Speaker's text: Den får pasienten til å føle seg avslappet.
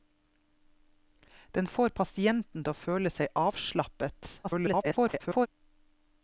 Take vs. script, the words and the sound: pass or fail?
fail